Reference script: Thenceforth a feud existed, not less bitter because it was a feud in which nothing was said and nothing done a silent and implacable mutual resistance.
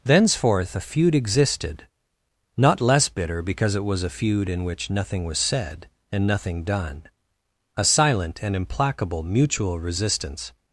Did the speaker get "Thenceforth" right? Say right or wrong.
right